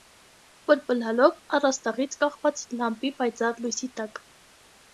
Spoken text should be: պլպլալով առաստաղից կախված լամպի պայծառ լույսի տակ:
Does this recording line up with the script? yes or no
yes